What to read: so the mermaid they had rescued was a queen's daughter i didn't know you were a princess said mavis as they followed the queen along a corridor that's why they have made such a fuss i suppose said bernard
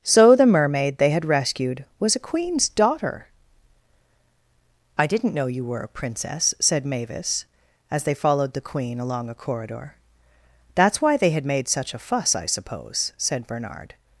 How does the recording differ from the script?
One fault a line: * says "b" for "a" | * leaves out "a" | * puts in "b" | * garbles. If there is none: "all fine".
* says "had" for "have"